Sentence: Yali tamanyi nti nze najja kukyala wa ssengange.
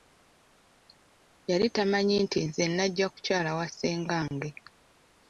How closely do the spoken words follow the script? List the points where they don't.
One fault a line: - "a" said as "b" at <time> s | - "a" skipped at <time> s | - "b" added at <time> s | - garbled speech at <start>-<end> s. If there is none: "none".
none